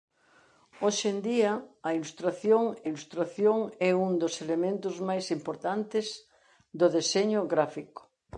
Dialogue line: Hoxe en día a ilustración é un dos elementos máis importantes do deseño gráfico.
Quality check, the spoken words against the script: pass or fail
fail